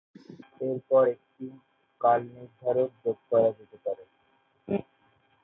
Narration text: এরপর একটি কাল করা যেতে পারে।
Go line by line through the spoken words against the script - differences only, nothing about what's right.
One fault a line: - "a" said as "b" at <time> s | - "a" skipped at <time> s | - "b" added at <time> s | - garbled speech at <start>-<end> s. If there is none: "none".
- "নির্ধারক যোগ" added at 2.3 s